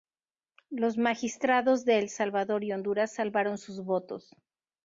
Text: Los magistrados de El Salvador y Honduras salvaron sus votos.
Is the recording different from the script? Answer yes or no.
no